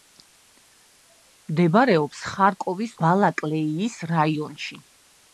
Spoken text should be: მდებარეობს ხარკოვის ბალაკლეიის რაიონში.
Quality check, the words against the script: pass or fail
pass